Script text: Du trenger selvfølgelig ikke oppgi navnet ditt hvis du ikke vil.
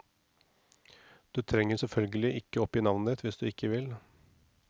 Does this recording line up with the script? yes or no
yes